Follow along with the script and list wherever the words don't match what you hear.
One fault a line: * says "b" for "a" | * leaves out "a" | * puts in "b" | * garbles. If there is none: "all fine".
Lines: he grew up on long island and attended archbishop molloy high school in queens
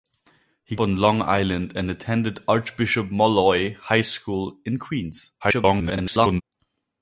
* leaves out "grew up"
* garbles